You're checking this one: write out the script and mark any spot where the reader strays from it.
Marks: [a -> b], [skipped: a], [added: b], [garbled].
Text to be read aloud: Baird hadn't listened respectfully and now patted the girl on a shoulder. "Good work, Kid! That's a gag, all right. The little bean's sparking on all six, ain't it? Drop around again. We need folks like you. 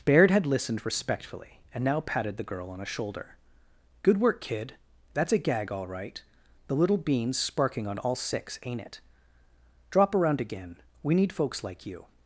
Baird [hadn't -> had] listened respectfully and now patted the girl on a shoulder. "Good work, Kid! That's a gag, all right. The little bean's sparking on all six, ain't it? Drop around again. We need folks like you.